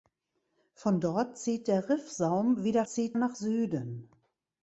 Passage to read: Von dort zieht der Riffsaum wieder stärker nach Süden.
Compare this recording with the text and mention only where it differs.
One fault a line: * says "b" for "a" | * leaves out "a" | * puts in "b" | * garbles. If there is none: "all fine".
* says "zieht" for "stärker"